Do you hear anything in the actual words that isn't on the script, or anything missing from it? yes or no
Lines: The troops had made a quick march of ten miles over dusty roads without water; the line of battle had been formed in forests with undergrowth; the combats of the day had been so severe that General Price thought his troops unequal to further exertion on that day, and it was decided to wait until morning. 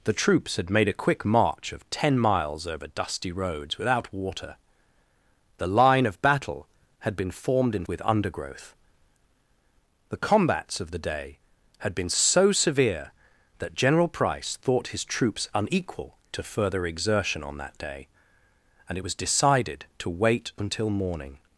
yes